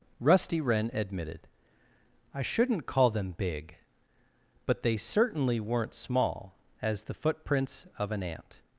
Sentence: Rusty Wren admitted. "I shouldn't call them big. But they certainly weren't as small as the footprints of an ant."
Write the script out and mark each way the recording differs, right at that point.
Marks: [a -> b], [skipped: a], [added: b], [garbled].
Rusty Wren admitted. "I shouldn't call them big. But they certainly weren't [skipped: as] small as the footprints of an ant."